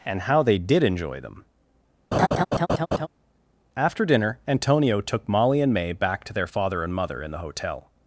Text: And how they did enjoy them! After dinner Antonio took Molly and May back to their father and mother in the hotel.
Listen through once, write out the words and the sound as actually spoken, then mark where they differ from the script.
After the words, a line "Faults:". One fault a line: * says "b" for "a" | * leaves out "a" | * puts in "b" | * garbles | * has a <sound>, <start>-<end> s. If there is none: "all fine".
And how they did enjoy them! After dinner Antonio took Molly and May back to their father and mother in the hotel.
Faults:
* has a laugh, 2.1-3.1 s